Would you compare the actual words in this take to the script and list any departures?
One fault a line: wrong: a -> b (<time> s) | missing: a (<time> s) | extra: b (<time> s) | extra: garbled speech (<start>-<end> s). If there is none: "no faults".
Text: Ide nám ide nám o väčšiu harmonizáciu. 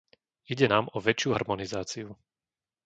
missing: ide nám (0.9 s)